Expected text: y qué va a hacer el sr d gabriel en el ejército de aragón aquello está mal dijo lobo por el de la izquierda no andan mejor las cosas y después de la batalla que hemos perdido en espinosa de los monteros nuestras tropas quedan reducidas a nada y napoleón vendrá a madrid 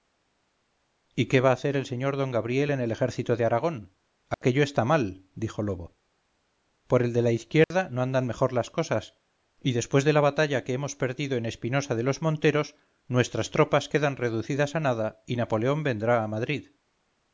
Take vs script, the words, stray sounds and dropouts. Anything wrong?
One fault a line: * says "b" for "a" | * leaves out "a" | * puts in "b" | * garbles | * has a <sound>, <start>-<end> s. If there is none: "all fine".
* has a dropout, 4.3-4.4 s
* has a dropout, 7.6-7.7 s